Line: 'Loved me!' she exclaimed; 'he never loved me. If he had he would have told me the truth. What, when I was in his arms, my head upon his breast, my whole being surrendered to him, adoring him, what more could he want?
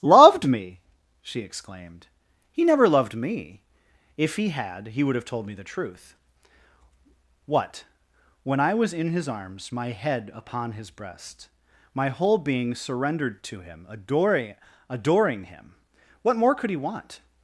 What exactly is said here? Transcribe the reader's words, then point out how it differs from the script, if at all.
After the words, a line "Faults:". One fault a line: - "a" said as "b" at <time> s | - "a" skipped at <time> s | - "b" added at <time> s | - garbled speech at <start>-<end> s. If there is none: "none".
'Loved me!' she exclaimed; 'he never loved me. If he had he would have told me the truth. What, when I was in his arms, my head upon his breast, my whole being surrendered to him, adoring adoring him, what more could he want?
Faults:
- "adoring" added at 14.9 s